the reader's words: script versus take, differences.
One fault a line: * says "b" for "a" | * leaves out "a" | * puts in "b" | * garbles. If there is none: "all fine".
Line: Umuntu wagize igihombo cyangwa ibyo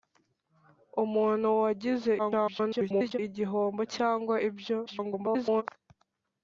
* garbles
* garbles